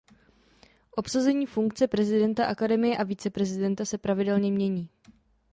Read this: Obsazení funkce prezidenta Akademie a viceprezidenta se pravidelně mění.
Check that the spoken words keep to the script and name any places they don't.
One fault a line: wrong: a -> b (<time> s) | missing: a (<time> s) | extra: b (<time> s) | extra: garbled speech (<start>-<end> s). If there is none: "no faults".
no faults